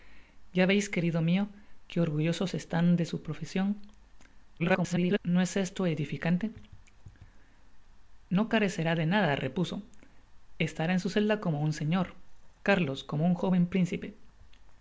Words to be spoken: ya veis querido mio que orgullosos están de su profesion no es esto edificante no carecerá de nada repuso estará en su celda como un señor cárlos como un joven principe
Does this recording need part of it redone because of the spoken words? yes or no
yes